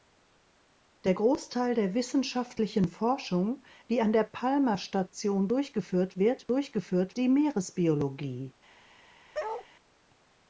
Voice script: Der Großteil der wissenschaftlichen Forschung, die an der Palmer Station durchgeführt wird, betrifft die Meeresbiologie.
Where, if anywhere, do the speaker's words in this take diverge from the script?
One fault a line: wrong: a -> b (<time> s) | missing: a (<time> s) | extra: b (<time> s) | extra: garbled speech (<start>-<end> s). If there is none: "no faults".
wrong: betrifft -> durchgeführt (6.5 s)